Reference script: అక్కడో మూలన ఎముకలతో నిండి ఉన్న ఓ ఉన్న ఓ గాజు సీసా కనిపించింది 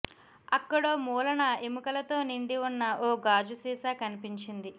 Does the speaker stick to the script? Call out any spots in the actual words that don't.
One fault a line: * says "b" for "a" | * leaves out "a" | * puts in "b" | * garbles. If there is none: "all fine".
* leaves out "ఉన్న ఓ"